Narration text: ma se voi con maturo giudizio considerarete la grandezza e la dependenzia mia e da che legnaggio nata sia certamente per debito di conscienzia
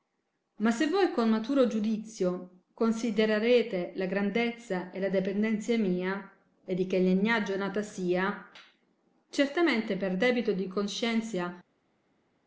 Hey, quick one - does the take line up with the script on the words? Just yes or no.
no